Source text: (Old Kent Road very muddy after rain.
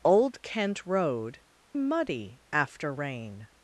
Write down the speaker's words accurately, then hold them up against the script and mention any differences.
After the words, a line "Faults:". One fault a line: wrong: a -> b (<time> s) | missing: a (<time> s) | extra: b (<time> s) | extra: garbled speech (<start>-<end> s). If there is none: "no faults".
(Old Kent Road muddy after rain.
Faults:
missing: very (1.4 s)